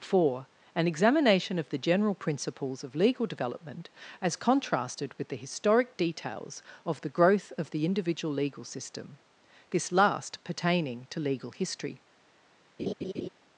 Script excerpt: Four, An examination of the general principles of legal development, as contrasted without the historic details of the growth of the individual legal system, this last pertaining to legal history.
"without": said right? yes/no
no